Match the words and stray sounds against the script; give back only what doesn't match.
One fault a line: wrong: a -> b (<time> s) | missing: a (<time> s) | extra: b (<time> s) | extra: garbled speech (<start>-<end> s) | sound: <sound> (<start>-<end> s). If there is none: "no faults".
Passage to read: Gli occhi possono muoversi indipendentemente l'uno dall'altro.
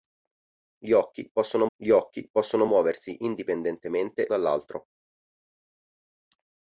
extra: gli occhi possono (1.8 s)
missing: l'uno (4.3 s)